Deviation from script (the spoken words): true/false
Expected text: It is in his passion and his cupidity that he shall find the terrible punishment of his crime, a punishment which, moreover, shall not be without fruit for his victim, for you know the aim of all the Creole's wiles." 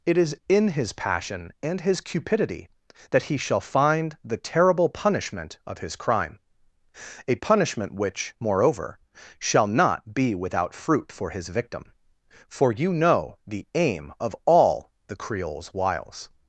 false